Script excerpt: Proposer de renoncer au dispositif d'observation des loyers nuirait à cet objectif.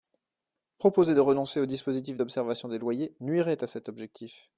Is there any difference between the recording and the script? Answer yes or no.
no